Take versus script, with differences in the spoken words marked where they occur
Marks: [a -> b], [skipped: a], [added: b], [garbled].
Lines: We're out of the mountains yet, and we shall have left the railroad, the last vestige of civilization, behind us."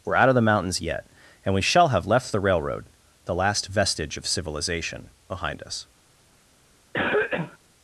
We're out of the mountains yet, and we shall have left the railroad, the last vestige of civilization, behind us."